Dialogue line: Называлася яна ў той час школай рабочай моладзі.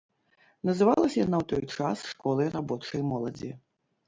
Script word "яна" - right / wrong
right